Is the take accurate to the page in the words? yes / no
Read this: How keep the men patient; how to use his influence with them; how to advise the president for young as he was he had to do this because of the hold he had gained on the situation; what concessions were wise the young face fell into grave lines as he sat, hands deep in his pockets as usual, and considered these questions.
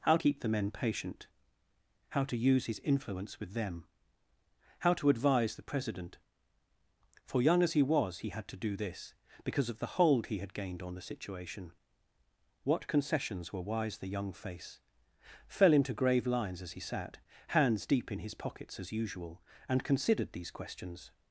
yes